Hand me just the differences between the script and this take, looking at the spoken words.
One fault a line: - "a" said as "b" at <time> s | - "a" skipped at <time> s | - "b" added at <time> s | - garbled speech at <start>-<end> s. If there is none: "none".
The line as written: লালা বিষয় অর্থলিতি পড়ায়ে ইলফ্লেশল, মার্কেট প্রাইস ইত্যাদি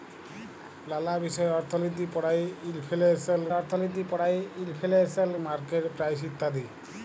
- "অর্থলিতি পড়ায়ে ইলফ্লেশল" added at 3.5 s